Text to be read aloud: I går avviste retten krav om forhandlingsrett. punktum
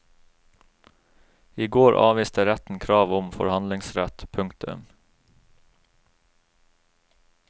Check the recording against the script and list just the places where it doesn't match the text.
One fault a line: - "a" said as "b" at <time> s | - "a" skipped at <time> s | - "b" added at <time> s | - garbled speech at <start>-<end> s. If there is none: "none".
none